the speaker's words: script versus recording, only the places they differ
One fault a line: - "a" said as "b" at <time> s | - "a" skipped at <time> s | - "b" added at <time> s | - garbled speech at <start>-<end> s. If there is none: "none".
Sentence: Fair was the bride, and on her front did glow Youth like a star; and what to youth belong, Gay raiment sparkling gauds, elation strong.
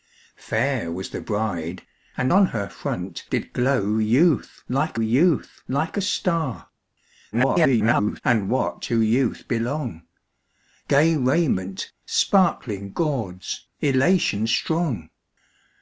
- "Youth like" added at 5.0 s
- garbled speech at 7.3-8.2 s